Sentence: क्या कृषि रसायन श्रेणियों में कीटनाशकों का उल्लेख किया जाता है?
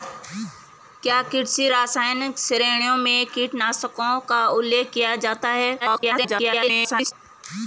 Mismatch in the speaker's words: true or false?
true